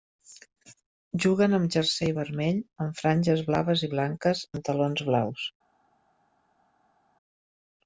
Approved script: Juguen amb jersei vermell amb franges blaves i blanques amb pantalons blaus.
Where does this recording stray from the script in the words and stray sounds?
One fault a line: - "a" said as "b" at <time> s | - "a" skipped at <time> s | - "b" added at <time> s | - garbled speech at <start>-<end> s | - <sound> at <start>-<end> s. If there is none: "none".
- "amb" skipped at 4.5 s